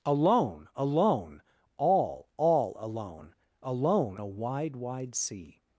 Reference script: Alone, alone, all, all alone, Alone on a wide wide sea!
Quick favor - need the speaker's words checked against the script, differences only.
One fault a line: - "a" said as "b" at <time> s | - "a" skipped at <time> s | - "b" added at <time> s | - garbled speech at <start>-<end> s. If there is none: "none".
- "on" skipped at 4.2 s